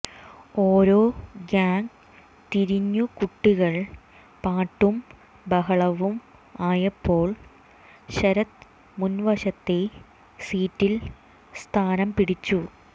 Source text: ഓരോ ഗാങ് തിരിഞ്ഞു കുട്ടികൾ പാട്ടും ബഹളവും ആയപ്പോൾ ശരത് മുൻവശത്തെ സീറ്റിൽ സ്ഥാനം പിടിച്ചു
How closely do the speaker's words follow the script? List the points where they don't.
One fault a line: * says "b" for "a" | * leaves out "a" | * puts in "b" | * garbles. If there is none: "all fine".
all fine